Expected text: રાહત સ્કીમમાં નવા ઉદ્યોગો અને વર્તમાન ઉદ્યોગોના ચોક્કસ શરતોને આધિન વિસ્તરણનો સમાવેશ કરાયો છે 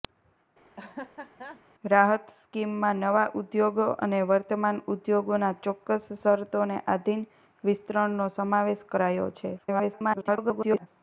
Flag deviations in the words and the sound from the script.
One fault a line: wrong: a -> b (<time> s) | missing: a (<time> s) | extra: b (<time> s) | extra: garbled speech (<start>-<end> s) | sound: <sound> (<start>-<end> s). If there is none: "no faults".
sound: laugh (0.8-1.6 s)
extra: garbled speech (9.6-10.9 s)